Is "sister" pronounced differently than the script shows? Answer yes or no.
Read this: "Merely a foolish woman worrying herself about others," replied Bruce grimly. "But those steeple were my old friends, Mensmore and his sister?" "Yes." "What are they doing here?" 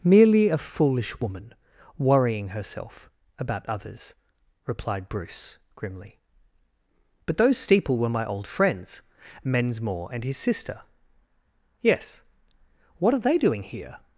no